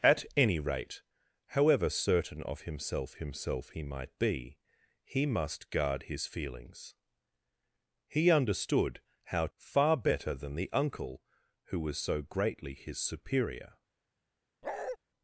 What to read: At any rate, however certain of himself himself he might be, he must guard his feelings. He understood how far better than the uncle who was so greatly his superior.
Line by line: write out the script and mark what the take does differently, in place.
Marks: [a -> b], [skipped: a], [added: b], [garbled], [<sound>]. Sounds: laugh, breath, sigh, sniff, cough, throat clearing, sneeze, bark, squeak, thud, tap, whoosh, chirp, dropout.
At any rate, however certain of himself himself he might be, he must guard his feelings. He understood how far better than the uncle who was so greatly his superior. [bark]